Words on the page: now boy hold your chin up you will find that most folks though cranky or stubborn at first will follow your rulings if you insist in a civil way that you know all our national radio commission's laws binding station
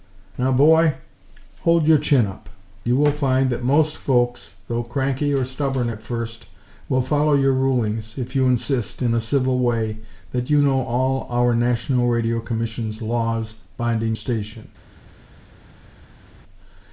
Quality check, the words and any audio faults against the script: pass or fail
pass